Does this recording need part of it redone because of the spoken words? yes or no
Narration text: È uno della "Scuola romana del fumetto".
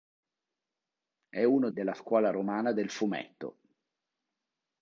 no